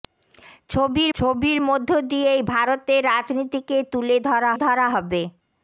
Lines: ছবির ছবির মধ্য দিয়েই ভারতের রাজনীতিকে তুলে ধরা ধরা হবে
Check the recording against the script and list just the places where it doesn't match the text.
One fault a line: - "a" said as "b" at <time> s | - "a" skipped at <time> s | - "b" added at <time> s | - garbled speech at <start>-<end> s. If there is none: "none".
none